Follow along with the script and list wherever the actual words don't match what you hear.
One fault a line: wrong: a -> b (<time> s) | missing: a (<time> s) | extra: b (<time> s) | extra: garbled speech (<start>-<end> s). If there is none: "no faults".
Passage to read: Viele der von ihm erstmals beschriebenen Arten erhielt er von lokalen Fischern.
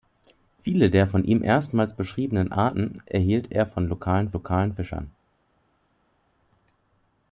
extra: lokalen (4.3 s)